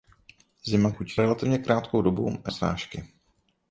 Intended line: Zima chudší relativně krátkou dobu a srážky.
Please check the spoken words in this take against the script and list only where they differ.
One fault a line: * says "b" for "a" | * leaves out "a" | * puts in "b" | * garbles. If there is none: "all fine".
all fine